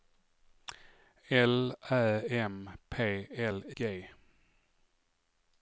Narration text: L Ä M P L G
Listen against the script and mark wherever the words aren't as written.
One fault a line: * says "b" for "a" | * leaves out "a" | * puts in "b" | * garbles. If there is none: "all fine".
all fine